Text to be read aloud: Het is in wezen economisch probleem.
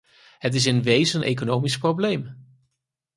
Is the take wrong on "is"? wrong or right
right